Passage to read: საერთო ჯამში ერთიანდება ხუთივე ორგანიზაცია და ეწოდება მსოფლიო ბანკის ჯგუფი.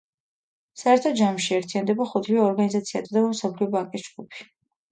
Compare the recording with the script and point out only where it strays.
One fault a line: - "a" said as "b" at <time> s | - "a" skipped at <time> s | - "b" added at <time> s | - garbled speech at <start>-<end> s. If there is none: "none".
- "და" skipped at 3.0 s